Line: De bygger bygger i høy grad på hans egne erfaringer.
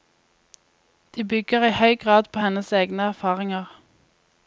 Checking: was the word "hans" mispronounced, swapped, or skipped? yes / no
yes